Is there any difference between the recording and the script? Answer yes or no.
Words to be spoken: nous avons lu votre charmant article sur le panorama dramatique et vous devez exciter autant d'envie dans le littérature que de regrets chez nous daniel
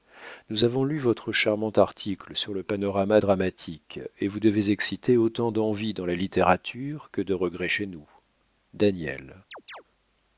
yes